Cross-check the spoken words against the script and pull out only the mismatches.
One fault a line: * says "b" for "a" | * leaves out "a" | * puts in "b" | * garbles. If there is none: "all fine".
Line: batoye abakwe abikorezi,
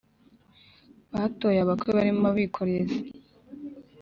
* puts in "barimo"